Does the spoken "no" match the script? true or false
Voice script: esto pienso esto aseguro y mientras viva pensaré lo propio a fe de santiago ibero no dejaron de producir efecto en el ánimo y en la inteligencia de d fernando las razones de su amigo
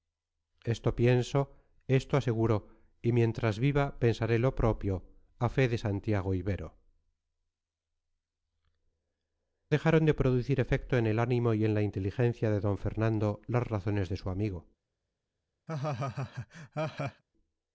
false